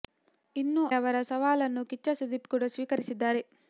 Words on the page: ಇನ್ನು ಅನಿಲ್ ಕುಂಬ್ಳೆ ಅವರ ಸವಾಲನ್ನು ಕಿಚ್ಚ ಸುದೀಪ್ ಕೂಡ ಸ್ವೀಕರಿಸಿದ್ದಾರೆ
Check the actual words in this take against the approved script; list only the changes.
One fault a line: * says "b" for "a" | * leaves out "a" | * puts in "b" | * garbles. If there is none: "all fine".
* leaves out "ಅನಿಲ್ ಕುಂಬ್ಳೆ"